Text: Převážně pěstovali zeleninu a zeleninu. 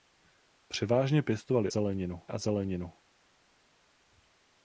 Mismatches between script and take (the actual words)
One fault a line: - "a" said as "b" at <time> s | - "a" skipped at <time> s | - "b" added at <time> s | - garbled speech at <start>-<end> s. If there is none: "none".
none